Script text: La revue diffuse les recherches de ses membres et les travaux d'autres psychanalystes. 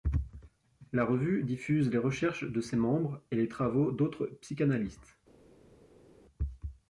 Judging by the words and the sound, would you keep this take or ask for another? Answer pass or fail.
pass